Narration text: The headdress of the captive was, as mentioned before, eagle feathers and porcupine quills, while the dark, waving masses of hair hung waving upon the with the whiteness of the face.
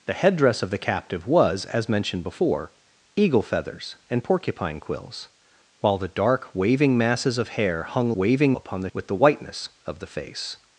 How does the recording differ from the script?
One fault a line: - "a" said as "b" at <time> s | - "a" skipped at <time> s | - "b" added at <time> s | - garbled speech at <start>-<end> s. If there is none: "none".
none